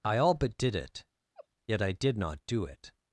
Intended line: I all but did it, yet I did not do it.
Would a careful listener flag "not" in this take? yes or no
no